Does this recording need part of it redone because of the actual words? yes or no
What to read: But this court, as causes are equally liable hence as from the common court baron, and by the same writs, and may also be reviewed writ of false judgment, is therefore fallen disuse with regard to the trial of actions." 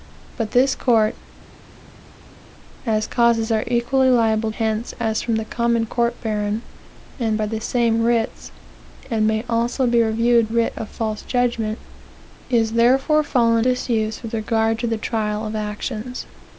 no